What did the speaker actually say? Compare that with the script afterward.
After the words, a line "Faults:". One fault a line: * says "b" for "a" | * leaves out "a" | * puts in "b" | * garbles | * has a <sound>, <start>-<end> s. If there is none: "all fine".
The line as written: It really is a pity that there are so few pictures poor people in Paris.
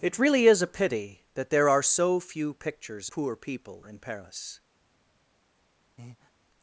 It really is a pity that there are so few pictures poor people in Paris.
Faults:
* has a breath, 6.0-6.3 s